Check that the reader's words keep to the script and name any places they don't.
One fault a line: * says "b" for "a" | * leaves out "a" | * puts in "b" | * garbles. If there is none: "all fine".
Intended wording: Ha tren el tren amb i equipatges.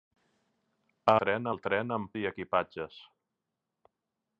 all fine